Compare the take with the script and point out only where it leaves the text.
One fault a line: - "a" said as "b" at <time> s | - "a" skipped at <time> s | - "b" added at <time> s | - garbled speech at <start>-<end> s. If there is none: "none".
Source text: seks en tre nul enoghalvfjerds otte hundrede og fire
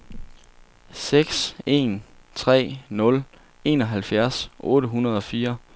none